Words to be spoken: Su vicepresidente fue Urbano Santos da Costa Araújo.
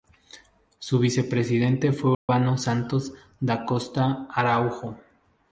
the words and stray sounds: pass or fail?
fail